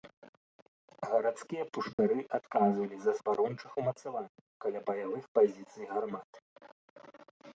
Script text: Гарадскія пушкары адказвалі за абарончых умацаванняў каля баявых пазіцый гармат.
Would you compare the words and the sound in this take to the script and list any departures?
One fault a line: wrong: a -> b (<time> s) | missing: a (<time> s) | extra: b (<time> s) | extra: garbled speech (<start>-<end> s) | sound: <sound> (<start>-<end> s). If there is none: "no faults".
sound: dropout (1.9-2.0 s)